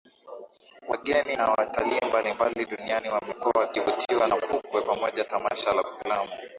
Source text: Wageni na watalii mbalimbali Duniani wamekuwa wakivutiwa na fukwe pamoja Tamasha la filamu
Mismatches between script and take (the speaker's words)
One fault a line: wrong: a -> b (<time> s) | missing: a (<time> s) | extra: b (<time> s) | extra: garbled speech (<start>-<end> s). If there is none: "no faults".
no faults